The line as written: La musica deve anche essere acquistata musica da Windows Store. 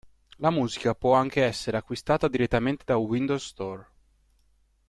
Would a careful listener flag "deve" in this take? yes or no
yes